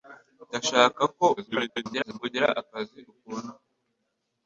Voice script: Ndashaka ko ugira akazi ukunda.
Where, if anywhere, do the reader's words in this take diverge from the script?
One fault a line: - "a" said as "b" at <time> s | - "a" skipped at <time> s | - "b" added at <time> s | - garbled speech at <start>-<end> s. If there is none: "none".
- garbled speech at 1.4-2.2 s